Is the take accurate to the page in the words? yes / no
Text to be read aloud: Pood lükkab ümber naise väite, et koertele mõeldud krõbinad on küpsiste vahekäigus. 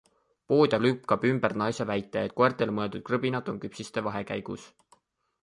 yes